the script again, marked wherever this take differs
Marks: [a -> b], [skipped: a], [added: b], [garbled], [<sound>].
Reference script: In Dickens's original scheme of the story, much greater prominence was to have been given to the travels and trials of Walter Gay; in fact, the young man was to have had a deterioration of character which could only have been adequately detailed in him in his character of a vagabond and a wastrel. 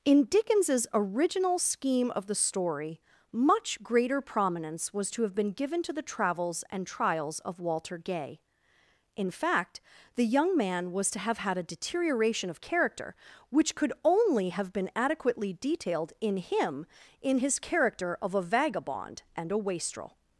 In Dickens's original scheme of the story, much greater prominence was to have been given to the travels and trials of Walter Gay; in fact, the young man was to have had a deterioration of character which could only have been adequately detailed in him in his character of a vagabond and a wastrel.